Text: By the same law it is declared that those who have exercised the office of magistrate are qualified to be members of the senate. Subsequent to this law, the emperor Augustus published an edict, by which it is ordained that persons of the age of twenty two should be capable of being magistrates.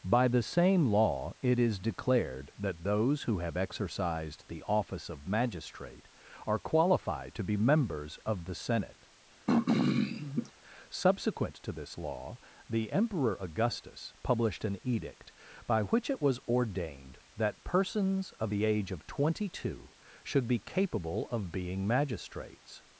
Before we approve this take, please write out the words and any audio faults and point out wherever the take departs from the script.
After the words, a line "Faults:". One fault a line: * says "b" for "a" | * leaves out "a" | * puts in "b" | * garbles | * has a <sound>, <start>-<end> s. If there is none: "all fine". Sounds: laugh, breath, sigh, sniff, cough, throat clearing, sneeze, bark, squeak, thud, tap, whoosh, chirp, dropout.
By the same law it is declared that those who have exercised the office of magistrate are qualified to be members of the senate. Subsequent to this law, the emperor Augustus published an edict, by which it was ordained that persons of the age of twenty two should be capable of being magistrates.
Faults:
* has a throat clearing, 9.5-10.5 s
* says "was" for "is"